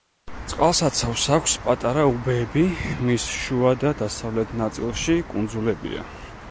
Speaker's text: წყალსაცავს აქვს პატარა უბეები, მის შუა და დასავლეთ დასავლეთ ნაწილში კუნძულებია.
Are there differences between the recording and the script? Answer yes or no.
yes